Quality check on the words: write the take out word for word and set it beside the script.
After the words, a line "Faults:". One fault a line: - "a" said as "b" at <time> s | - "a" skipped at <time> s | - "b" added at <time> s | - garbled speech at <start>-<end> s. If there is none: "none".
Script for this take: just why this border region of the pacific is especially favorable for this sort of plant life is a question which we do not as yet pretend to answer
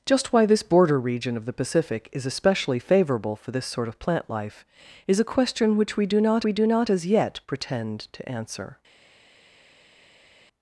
just why this border region of the pacific is especially favorable for this sort of plant life is a question which we do not we do not as yet pretend to answer
Faults:
- "we do not" added at 6.4 s